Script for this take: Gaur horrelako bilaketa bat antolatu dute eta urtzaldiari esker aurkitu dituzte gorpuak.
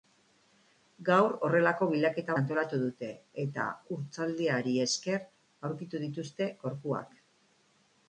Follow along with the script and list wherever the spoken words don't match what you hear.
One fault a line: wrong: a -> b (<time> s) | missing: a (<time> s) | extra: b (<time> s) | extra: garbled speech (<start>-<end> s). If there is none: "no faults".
missing: bat (2.4 s)